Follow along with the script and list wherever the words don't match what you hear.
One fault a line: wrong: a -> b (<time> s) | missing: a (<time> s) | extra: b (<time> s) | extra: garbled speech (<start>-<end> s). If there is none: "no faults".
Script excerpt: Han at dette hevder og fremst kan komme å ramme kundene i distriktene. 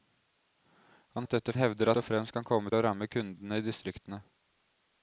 no faults